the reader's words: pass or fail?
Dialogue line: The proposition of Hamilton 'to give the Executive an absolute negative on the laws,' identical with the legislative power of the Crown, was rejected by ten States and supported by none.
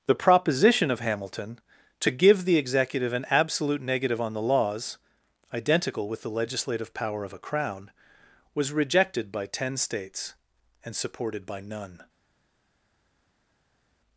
fail